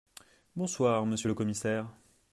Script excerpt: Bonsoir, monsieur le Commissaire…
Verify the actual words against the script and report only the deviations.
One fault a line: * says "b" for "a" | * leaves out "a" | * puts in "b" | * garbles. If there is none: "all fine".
all fine